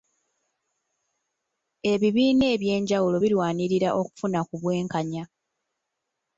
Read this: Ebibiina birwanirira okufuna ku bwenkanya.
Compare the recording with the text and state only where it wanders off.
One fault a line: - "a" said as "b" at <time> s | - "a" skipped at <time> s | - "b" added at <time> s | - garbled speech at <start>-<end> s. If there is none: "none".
- "ebyenjawulo" added at 2.5 s